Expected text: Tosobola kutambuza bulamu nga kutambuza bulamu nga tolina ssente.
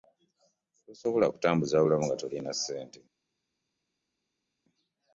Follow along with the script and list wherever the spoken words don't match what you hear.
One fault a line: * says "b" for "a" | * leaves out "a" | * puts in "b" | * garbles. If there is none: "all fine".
* leaves out "kutambuza bulamu nga"